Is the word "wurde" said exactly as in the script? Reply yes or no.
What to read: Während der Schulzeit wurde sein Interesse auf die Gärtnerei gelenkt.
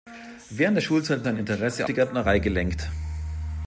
no